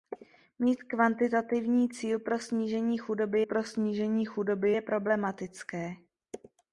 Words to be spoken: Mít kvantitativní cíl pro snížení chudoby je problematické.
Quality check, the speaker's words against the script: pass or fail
fail